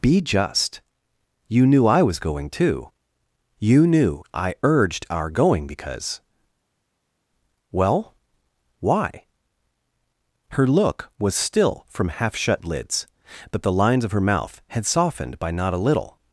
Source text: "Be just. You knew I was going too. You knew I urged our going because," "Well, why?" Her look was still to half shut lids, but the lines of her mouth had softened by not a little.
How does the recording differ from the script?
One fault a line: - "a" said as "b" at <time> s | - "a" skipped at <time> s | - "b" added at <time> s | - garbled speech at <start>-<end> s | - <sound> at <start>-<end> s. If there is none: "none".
- "to" said as "from" at 11.9 s